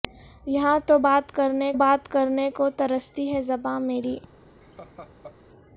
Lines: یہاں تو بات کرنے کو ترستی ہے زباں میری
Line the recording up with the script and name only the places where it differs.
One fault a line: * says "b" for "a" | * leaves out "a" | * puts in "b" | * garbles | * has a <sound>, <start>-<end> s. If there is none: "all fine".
* puts in "بات کرنے"
* has a laugh, 4.6-5.4 s